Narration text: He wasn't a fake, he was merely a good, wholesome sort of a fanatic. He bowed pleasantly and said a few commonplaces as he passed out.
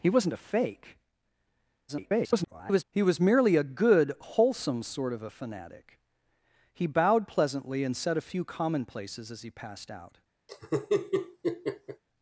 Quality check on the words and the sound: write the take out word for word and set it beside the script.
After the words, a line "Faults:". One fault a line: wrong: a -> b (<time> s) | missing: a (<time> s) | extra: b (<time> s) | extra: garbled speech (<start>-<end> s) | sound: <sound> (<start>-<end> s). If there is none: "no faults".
He wasn't a fake, [garbled] he was merely a good, wholesome sort of a fanatic. He bowed pleasantly and said a few commonplaces as he passed out.
Faults:
extra: garbled speech (1.9-2.8 s)
sound: laugh (10.5-12.0 s)